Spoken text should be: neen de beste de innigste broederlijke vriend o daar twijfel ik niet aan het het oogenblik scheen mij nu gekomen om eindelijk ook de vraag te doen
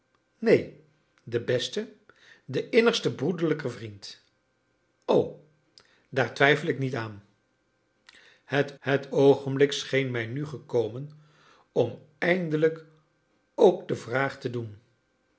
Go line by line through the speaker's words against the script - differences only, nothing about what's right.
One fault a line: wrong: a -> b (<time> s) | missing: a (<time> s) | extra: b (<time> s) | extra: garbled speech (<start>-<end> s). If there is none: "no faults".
no faults